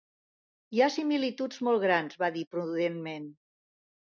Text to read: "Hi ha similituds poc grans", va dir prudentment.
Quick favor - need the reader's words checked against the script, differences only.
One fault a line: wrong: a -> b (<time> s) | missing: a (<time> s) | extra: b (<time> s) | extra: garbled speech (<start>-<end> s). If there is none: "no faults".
wrong: poc -> molt (1.7 s)